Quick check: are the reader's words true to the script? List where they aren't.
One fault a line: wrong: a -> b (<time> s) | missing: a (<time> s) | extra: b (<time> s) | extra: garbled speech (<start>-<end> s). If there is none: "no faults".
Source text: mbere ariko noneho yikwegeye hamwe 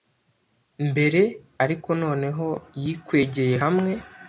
no faults